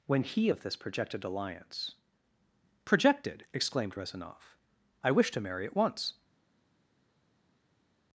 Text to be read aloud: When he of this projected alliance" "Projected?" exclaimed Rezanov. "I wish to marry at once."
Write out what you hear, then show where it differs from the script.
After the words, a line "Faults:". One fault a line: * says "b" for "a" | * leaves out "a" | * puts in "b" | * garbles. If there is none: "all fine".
When he of this projected alliance" "Projected?" exclaimed Rezanov. "I wish to marry at once."
Faults:
all fine